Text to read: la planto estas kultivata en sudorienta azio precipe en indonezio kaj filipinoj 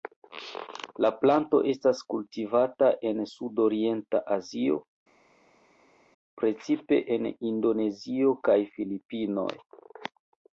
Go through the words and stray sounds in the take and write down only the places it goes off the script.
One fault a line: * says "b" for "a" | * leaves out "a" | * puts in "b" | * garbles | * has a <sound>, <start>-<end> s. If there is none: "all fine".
all fine